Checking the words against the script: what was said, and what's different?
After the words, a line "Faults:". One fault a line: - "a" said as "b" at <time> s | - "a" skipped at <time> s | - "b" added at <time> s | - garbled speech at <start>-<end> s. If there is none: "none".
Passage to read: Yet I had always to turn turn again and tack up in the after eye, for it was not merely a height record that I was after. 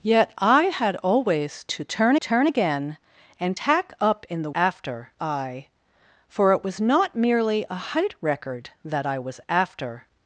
Yet I had always to turn turn again and tack up in the after eye, for it was not merely a height record that I was after.
Faults:
none